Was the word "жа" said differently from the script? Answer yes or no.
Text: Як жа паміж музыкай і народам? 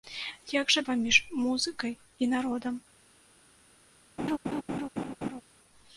no